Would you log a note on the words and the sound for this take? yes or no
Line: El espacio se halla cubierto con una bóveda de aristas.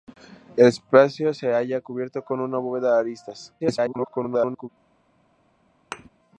yes